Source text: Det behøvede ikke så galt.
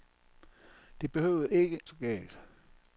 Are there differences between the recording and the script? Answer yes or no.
no